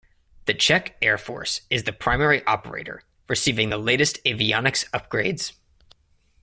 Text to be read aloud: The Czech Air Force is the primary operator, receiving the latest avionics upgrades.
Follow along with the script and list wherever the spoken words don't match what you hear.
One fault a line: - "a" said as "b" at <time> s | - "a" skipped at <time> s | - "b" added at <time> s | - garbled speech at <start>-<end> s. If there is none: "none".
none